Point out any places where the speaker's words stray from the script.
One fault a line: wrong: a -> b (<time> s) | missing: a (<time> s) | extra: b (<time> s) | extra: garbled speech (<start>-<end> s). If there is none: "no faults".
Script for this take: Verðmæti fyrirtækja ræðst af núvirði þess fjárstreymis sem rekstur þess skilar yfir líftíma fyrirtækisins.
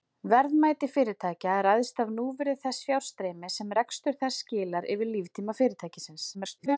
extra: garbled speech (6.3-6.8 s)